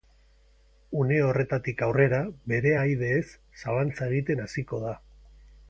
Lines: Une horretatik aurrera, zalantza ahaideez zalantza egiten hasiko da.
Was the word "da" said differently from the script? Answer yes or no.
no